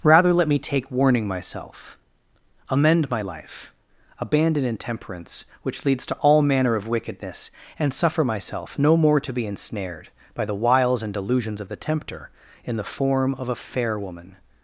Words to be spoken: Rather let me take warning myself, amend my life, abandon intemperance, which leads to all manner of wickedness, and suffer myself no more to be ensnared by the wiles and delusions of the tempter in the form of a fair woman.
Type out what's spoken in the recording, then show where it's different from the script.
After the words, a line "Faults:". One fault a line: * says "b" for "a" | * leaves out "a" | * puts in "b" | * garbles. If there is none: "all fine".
Rather let me take warning myself, amend my life, abandon intemperance, which leads to all manner of wickedness, and suffer myself no more to be ensnared by the wiles and delusions of the tempter in the form of a fair woman.
Faults:
all fine